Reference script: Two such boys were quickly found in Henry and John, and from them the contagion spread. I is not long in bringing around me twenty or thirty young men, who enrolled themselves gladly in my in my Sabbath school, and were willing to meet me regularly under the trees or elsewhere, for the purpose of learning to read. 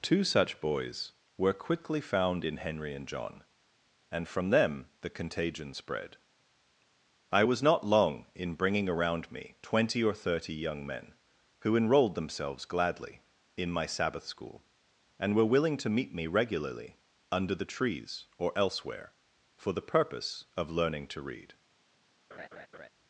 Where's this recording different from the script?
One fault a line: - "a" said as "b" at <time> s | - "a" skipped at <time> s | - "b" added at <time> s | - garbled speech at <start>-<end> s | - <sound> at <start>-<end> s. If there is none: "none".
- "is" said as "was" at 7.4 s
- "in my" skipped at 13.9 s
- laugh at 22.3-22.9 s